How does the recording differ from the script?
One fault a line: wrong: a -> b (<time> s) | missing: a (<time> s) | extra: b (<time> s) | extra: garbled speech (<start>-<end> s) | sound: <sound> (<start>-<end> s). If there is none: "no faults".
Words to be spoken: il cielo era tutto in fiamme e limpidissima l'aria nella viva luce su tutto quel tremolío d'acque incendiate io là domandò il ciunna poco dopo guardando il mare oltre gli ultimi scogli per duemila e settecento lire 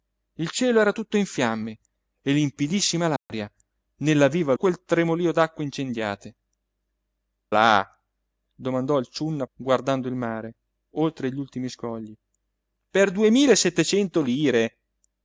sound: dropout (3.2-3.3 s)
missing: luce su tutto (4.5 s)
missing: io (6.4 s)
missing: poco dopo (9.5 s)